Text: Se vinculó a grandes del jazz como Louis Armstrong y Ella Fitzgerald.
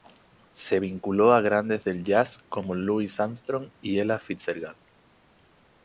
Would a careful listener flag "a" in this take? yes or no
no